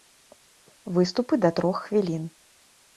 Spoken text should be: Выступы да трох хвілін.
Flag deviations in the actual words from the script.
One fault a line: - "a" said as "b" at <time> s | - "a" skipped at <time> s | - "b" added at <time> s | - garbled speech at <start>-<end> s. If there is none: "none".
none